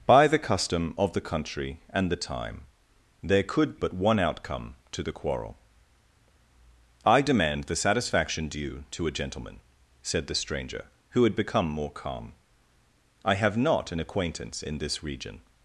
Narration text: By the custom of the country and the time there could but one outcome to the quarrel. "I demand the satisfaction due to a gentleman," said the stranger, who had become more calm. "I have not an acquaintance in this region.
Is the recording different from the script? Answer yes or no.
no